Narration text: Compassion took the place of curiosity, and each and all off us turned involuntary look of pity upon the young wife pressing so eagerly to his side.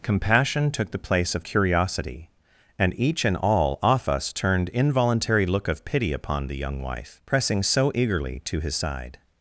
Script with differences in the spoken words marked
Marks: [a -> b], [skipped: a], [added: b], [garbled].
Compassion took the place of curiosity, and each and all off us turned involuntary look of pity upon the young wife pressing so eagerly to his side.